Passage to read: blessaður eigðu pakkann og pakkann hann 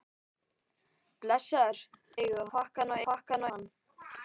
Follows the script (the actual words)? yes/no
yes